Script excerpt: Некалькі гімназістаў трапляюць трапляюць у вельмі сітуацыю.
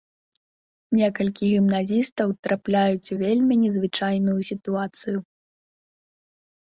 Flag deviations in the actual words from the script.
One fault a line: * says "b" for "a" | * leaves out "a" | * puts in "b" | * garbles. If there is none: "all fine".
* leaves out "трапляюць"
* puts in "незвычайную"